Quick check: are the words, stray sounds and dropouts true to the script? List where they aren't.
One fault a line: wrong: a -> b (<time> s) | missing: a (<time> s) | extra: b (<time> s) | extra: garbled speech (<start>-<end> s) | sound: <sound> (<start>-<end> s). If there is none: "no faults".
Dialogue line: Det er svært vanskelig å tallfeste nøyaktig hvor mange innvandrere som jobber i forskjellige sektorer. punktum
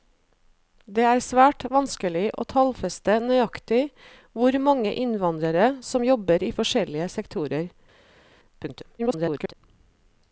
extra: garbled speech (9.0-9.5 s)